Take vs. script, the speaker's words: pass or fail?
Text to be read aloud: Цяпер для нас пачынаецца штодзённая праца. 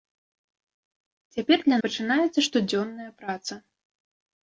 fail